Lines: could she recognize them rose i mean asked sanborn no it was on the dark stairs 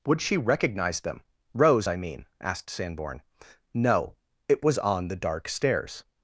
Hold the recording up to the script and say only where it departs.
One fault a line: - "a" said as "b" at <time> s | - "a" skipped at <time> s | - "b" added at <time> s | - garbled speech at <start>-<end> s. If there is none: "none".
- "could" said as "would" at 0.1 s